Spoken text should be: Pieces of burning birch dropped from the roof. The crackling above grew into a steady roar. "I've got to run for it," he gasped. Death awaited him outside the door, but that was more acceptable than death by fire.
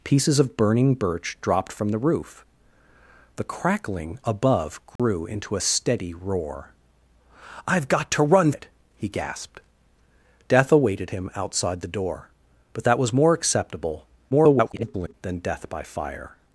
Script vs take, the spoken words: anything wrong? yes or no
yes